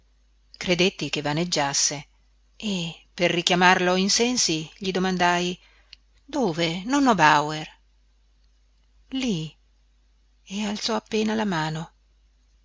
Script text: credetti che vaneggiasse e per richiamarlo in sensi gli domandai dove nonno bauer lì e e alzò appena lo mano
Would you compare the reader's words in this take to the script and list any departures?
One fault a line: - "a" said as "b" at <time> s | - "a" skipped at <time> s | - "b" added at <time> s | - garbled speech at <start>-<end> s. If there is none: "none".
- "e" skipped at 10.6 s
- "lo" said as "la" at 11.3 s